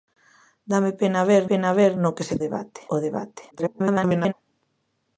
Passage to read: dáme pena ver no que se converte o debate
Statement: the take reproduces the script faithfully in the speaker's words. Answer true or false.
false